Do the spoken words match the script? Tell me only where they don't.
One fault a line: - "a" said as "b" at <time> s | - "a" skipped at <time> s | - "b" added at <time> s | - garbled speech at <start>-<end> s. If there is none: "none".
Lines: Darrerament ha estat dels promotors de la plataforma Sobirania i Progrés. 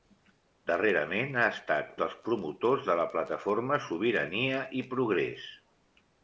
none